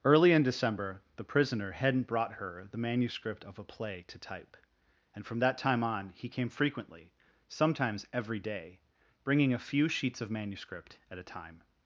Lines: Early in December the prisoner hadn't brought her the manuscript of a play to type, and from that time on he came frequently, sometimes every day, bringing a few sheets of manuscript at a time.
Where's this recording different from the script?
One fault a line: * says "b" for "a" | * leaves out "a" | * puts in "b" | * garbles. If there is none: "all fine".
all fine